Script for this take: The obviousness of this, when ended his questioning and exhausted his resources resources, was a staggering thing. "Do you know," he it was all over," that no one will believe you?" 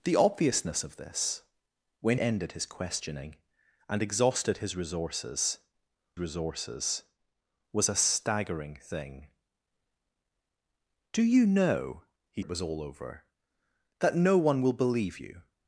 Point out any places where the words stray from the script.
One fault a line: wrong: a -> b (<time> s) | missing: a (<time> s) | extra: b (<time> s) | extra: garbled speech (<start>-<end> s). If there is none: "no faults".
no faults